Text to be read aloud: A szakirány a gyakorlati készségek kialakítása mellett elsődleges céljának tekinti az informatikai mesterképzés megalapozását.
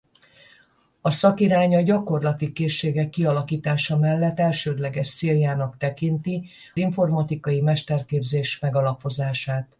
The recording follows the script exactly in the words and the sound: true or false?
false